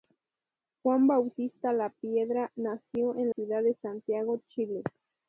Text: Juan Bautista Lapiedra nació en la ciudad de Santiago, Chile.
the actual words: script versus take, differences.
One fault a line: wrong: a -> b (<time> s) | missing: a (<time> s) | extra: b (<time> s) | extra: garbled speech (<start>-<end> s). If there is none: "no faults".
missing: la (3.3 s)